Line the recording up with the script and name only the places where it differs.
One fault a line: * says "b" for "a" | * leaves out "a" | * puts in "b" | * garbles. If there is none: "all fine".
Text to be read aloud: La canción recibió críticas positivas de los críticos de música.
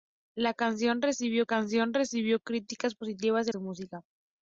* puts in "canción recibió"
* leaves out "los críticos"